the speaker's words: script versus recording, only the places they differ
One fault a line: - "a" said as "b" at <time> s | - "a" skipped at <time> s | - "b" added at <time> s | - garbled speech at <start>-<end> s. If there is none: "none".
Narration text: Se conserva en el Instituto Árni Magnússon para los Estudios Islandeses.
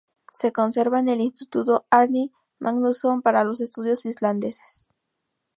none